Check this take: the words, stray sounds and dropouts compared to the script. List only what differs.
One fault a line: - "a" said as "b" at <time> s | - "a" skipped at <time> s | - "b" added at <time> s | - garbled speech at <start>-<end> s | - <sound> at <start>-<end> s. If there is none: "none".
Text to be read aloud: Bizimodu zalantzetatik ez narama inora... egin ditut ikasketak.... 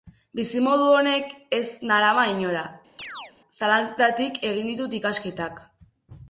- "zalantzetatik" said as "honek" at 0.9 s
- chirp at 3.0-3.3 s
- "zalantzetatik" added at 3.6 s